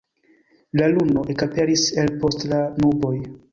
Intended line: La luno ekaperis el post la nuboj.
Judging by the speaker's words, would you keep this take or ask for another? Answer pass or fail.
pass